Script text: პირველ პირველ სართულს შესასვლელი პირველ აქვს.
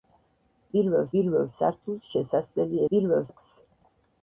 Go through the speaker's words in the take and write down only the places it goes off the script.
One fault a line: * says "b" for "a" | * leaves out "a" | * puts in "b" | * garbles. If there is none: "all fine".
all fine